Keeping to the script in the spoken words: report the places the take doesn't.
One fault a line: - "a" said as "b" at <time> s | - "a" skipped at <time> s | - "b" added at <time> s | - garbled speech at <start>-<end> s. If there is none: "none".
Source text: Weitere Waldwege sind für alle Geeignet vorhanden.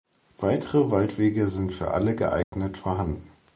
none